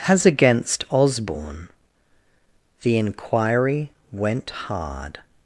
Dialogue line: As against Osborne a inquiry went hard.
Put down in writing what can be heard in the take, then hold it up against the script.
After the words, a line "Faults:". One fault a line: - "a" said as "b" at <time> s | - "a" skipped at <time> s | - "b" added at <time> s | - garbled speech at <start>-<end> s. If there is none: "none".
As against Osborne the inquiry went hard.
Faults:
- "a" said as "the" at 2.8 s